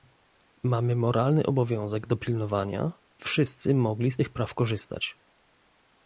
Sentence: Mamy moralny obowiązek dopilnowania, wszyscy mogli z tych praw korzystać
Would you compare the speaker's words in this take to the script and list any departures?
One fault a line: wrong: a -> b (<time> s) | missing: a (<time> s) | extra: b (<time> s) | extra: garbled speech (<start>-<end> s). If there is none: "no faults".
no faults